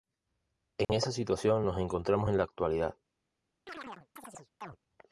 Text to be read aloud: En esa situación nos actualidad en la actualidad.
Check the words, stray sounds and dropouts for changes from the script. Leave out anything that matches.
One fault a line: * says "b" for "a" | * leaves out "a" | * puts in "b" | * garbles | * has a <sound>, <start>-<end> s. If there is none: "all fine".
* has a dropout, 0.8-0.9 s
* says "encontramos" for "actualidad"
* has a chirp, 3.7-4.8 s